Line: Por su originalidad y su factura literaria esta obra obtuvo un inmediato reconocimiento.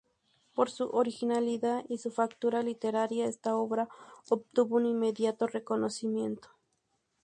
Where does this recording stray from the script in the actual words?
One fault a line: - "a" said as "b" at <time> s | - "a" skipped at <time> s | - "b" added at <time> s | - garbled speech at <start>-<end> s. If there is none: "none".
none